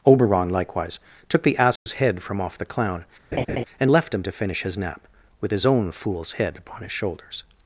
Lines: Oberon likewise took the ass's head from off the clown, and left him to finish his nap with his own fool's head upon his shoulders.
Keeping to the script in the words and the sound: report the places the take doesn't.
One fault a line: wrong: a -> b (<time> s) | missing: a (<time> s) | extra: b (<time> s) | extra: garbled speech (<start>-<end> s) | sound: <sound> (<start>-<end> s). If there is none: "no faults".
sound: dropout (1.8-1.9 s)
sound: laugh (3.3-3.6 s)